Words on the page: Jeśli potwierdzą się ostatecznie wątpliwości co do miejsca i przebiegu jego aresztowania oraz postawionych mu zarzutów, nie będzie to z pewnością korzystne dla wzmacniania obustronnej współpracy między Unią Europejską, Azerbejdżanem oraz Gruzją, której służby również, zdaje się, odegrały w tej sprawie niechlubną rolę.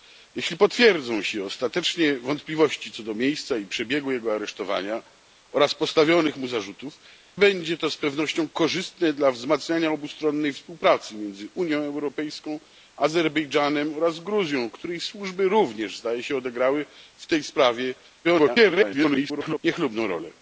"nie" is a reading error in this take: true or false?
true